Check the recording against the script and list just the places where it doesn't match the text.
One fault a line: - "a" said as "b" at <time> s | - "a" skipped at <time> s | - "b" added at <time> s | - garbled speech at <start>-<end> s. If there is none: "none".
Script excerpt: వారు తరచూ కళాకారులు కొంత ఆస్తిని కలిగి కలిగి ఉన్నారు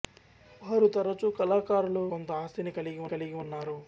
none